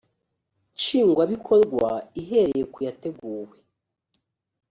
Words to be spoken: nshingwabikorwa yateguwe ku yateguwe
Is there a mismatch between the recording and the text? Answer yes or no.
yes